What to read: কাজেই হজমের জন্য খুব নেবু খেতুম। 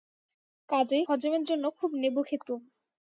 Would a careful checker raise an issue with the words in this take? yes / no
no